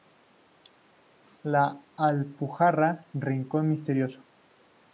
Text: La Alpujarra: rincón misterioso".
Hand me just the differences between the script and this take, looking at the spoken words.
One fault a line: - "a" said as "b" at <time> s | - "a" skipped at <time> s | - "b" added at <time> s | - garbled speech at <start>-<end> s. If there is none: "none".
none